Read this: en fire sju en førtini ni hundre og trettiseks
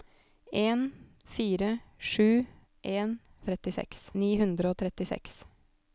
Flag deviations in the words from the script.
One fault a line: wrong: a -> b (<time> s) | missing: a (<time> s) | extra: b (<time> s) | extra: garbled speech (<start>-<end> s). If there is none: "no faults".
wrong: førtini -> trettiseks (3.5 s)